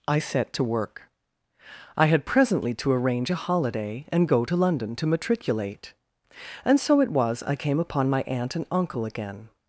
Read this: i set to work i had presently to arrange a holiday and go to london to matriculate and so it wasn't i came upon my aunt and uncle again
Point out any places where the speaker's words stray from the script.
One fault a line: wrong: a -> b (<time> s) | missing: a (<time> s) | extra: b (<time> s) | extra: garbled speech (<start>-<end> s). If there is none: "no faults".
wrong: wasn't -> was (7.1 s)